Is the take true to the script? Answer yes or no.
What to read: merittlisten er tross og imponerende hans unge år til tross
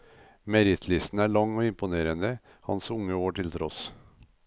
no